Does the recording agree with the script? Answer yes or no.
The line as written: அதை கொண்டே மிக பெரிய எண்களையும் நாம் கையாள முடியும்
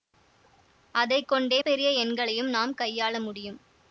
no